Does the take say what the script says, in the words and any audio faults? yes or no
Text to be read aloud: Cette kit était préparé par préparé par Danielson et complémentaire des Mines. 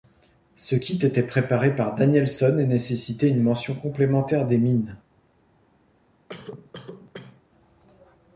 no